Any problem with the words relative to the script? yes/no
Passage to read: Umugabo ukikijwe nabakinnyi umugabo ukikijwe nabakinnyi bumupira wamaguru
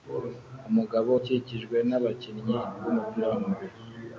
yes